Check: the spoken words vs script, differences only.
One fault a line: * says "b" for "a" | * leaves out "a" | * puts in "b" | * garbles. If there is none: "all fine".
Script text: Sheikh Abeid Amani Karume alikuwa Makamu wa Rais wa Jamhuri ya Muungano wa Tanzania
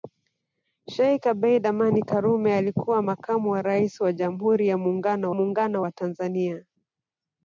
* puts in "Muungano"